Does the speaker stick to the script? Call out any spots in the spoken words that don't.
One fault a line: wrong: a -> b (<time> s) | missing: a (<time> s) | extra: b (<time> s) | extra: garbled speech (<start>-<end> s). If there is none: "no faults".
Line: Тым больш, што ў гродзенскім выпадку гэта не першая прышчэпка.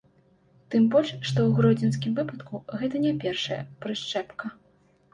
no faults